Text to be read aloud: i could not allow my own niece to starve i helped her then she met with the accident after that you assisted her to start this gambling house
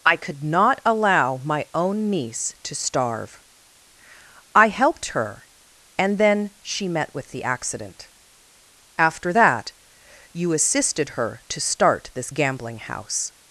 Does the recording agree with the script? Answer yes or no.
no